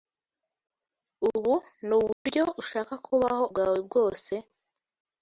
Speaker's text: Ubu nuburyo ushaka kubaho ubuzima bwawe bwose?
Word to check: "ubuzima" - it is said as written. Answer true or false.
false